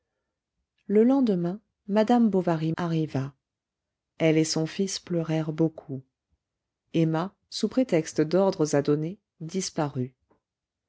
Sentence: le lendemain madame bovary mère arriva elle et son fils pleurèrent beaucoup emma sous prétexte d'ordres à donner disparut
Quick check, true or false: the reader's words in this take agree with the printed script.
false